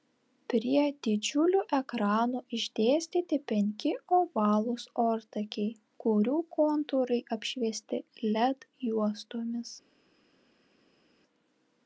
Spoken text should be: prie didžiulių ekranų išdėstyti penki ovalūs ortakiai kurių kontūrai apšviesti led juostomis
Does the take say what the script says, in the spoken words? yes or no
yes